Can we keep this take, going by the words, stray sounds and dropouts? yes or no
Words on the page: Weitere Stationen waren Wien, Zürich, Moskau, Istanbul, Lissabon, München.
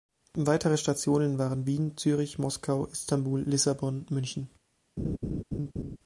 no